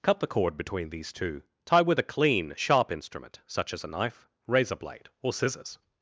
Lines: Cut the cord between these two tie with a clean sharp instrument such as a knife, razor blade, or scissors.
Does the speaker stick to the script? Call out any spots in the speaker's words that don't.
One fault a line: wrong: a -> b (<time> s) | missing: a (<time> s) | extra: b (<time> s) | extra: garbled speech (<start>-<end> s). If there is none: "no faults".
no faults